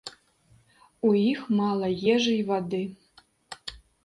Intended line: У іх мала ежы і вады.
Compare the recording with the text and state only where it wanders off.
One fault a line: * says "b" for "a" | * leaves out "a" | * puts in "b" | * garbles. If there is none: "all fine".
all fine